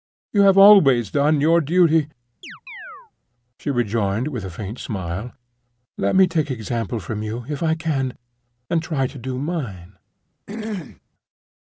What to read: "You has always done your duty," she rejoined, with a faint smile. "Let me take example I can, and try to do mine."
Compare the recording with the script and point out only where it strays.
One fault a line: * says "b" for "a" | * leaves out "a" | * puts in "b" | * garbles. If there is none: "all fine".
* says "have" for "has"
* puts in "from you if"